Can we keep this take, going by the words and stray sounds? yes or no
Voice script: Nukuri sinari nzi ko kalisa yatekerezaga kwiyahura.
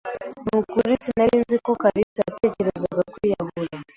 no